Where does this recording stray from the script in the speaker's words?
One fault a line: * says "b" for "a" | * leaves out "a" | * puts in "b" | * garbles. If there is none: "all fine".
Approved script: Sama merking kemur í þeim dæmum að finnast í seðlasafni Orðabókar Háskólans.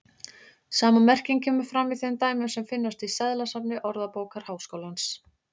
* puts in "fram"
* says "sem" for "að"